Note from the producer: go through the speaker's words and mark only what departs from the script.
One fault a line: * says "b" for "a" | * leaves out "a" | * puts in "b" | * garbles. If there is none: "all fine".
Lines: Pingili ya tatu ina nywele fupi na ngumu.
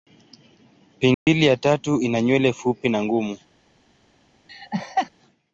all fine